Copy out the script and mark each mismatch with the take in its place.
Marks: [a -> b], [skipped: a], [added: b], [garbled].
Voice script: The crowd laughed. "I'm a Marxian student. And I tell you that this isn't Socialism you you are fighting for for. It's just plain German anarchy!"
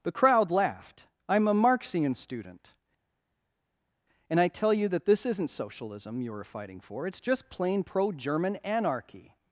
The crowd laughed. "I'm a Marxian student. And I tell you that this isn't Socialism you [skipped: you] are fighting for [skipped: for.] It's just plain [added: pro] German anarchy!"